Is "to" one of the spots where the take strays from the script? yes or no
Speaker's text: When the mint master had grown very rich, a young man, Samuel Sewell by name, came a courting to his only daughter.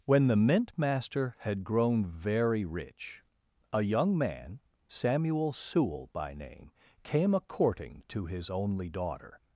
no